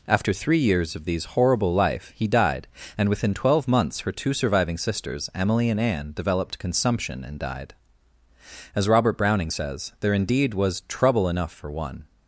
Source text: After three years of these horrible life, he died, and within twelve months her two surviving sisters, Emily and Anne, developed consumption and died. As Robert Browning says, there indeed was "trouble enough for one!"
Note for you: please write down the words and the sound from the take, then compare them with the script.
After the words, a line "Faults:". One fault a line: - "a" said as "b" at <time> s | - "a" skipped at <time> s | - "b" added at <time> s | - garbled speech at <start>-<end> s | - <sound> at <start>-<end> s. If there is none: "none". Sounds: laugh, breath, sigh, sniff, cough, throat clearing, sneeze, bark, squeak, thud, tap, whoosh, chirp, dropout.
After three years of these horrible life, he died, and within twelve months her two surviving sisters, Emily and Anne, developed consumption and died. As Robert Browning says, there indeed was "trouble enough for one!"
Faults:
none